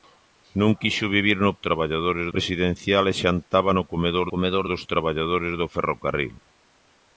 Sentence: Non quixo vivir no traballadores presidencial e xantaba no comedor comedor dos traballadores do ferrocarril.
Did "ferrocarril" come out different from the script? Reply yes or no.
no